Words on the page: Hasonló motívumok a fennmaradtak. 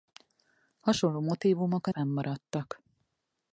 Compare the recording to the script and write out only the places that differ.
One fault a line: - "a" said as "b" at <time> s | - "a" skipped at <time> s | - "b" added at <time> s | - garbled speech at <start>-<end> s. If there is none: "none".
none